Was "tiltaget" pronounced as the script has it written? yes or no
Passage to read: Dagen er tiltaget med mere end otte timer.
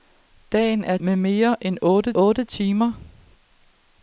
no